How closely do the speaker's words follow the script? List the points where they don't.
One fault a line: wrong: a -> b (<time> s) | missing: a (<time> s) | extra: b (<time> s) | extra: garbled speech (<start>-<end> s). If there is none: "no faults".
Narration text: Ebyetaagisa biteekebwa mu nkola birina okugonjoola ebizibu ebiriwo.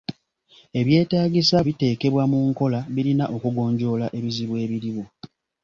no faults